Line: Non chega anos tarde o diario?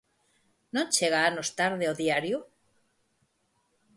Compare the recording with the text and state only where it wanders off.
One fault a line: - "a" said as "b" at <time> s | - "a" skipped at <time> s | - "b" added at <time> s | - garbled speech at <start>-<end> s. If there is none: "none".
none